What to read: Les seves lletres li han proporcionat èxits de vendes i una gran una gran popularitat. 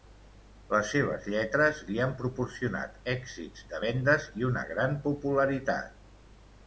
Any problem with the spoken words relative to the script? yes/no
yes